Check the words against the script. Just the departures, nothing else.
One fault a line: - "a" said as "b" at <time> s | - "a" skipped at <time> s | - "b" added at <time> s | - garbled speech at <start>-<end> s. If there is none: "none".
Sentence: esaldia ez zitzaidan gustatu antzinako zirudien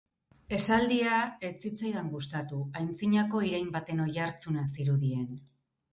- "irain baten oihartzuna" added at 3.5 s